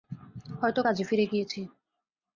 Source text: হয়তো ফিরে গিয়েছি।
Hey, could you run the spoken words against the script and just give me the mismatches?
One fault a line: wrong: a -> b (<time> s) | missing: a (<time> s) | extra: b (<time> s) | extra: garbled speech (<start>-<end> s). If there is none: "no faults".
extra: কাজে (0.8 s)